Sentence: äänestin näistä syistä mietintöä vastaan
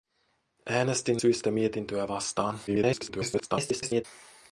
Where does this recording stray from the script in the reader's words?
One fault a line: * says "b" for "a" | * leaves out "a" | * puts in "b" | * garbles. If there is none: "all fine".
* leaves out "näistä"
* garbles